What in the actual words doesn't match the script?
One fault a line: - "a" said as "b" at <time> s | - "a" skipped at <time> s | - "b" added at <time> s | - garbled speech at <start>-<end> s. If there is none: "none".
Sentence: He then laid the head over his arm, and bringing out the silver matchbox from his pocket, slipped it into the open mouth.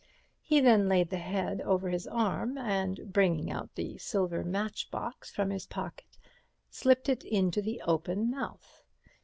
none